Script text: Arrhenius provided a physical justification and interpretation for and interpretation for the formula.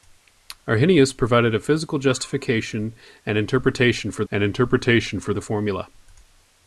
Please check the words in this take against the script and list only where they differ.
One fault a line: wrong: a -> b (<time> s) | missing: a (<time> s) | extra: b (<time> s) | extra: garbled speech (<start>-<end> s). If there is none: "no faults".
no faults